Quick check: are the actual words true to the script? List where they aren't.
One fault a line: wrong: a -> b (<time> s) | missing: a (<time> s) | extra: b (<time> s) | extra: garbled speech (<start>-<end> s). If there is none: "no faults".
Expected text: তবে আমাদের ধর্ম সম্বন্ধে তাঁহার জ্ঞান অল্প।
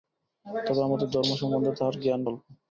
no faults